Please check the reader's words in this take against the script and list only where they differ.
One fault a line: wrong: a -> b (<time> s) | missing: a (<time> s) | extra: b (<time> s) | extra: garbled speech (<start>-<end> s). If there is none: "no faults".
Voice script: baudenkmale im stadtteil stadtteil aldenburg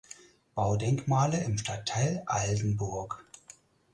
missing: stadtteil (2.2 s)